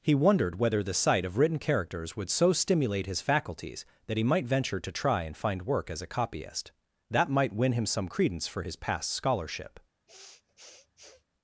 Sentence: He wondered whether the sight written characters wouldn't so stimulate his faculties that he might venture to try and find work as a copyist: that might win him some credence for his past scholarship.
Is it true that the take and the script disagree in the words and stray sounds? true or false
true